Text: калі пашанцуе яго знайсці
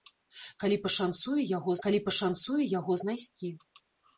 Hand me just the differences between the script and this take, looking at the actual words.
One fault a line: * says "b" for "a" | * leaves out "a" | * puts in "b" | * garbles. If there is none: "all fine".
* puts in "калі пашанцуе яго"